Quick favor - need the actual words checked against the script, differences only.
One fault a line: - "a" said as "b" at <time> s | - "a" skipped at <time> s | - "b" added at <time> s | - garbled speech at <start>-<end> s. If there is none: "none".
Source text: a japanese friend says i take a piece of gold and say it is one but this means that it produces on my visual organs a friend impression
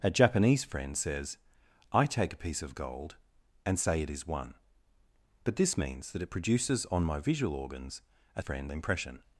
none